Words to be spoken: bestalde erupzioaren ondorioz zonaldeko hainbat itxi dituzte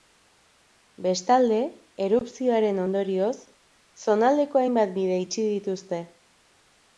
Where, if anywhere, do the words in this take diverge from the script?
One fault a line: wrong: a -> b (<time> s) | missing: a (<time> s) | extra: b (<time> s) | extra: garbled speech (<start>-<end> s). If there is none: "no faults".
extra: bide (5.0 s)